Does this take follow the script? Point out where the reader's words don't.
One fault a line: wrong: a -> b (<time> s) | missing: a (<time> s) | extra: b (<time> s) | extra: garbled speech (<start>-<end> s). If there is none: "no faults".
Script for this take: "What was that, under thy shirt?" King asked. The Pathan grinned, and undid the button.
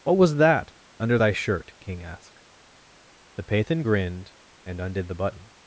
no faults